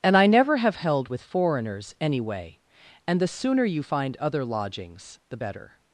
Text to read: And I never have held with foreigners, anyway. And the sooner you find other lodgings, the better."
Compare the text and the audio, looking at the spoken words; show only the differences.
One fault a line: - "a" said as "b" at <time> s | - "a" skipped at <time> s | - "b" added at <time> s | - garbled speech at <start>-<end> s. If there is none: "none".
none